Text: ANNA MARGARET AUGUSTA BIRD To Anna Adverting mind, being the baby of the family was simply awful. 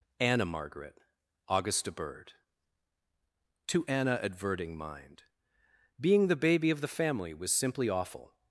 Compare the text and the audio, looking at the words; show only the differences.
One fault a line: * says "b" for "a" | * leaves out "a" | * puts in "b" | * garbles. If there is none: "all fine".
all fine